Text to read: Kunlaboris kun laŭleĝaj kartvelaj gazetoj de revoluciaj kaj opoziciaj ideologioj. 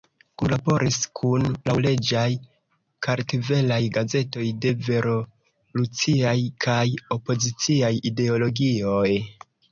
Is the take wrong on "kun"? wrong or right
right